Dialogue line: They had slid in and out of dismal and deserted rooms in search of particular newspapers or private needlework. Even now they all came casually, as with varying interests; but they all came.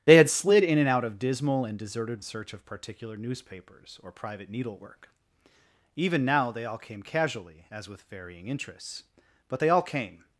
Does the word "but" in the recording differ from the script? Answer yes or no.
no